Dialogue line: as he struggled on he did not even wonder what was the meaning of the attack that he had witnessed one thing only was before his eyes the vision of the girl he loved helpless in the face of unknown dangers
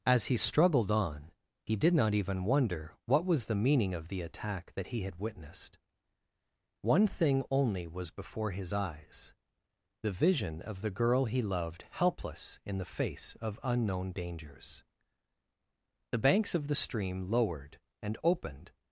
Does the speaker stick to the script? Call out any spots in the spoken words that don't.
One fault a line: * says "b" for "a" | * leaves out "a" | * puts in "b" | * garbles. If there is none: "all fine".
* puts in "the banks of the stream lowered and opened"